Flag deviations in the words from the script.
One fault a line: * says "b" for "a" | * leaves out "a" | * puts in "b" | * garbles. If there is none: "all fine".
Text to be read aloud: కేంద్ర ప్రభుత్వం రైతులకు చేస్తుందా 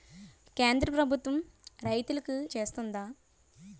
all fine